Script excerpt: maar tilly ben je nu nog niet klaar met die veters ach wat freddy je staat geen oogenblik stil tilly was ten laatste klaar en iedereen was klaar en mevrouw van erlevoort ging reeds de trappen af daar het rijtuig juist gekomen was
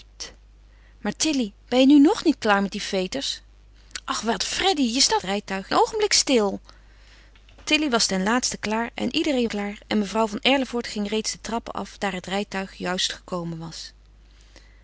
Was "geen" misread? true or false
true